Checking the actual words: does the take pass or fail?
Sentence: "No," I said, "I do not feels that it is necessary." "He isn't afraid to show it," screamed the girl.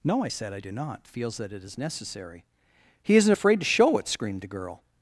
pass